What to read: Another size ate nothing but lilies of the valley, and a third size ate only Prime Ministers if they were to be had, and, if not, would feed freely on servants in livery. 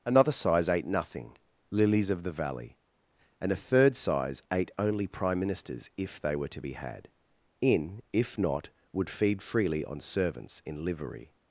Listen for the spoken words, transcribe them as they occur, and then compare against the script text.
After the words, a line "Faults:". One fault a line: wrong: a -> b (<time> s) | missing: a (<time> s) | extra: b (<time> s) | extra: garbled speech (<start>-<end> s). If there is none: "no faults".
Another size ate nothing lilies of the valley, and a third size ate only Prime Ministers if they were to be had, in, if not, would feed freely on servants in livery.
Faults:
missing: but (1.4 s)
wrong: and -> in (7.6 s)